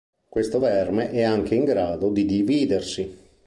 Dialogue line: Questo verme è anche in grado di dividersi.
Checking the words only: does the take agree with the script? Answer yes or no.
yes